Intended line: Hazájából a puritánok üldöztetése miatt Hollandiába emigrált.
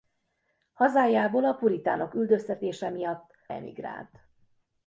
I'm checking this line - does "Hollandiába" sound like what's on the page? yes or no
no